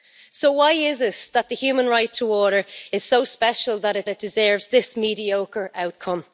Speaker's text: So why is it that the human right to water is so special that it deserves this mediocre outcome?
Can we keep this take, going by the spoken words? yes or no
no